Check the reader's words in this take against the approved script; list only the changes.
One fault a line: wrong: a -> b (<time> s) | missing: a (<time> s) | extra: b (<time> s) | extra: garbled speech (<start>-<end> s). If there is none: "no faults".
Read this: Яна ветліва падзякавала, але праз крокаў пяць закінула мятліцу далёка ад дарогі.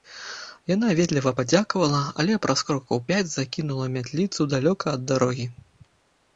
no faults